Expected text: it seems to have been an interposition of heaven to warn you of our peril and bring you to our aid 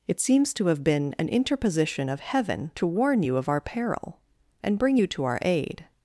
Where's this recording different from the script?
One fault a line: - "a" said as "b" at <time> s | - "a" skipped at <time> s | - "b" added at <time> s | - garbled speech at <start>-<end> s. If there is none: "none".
none